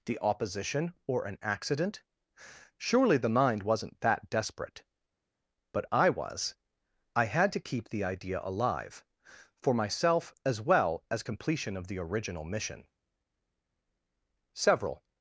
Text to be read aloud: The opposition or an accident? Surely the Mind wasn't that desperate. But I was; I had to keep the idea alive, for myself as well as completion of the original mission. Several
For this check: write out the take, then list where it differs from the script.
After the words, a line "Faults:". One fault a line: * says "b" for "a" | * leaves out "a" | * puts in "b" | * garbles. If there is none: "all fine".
The opposition or an accident? Surely the Mind wasn't that desperate. But I was; I had to keep the idea alive, for myself as well as completion of the original mission. Several
Faults:
all fine